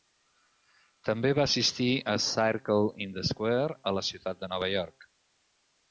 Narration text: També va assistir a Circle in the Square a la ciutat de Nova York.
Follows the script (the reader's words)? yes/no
yes